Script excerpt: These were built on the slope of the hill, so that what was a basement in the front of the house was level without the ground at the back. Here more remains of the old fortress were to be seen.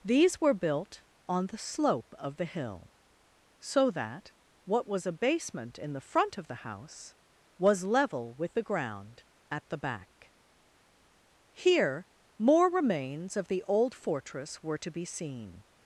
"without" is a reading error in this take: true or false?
true